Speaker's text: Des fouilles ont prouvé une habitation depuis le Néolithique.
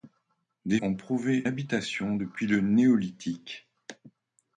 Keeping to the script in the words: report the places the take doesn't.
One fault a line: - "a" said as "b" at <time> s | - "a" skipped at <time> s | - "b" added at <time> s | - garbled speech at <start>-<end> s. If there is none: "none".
- "fouilles" skipped at 0.8 s
- "une" skipped at 1.4 s